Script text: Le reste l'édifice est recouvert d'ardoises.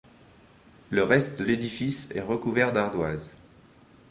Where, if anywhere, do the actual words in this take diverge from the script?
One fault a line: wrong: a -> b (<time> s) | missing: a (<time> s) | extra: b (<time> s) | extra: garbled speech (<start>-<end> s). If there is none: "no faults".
no faults